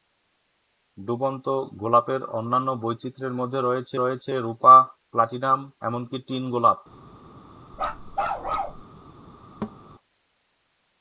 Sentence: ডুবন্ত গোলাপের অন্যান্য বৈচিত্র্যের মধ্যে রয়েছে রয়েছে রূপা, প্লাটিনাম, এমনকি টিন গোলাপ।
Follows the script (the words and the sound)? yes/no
no